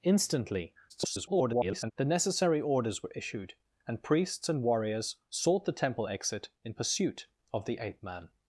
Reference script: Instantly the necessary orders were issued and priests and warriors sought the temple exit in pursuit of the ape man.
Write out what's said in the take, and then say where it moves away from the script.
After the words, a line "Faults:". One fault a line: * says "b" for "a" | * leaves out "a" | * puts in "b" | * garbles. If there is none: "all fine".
Instantly [garbled] the necessary orders were issued and priests and warriors sought the temple exit in pursuit of the ape man.
Faults:
* garbles